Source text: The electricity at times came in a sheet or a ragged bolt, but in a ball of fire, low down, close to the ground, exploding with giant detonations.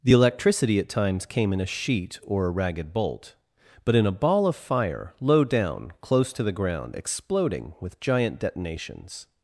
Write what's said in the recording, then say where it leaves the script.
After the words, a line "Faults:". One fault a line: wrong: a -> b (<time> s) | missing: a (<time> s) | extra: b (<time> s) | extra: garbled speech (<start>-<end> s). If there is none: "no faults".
The electricity at times came in a sheet or a ragged bolt, but in a ball of fire, low down, close to the ground, exploding with giant detonations.
Faults:
no faults